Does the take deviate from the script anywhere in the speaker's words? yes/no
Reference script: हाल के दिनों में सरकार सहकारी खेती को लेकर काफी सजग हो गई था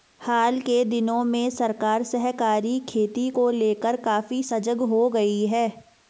yes